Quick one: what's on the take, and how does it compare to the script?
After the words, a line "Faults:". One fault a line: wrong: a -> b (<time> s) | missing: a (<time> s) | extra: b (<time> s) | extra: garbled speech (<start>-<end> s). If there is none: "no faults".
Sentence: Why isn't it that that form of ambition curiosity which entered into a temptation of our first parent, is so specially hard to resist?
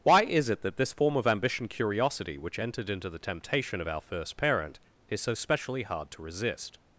Why is it that this form of ambition curiosity which entered into the temptation of our first parent, is so specially hard to resist?
Faults:
wrong: isn't -> is (0.2 s)
wrong: that -> this (0.8 s)
wrong: a -> the (3.1 s)